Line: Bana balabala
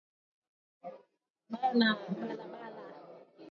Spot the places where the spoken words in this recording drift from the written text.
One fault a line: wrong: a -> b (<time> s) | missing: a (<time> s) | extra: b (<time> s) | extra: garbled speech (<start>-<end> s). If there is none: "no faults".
no faults